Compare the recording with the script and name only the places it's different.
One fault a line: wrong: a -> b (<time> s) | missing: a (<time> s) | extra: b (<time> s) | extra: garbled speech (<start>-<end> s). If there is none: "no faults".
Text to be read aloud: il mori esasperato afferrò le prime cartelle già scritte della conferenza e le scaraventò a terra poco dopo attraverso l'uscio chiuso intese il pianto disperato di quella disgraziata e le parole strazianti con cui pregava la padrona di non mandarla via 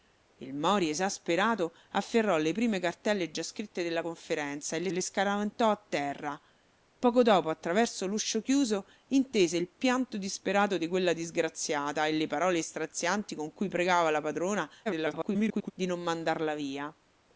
extra: le (4.9 s)
extra: garbled speech (14.9-15.7 s)